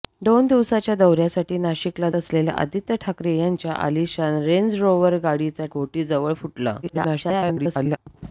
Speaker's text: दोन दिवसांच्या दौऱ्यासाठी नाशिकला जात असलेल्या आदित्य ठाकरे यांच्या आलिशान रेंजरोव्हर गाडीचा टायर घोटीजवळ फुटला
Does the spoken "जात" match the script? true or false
false